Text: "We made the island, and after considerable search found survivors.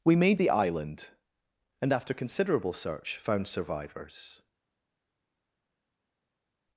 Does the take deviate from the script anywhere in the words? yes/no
no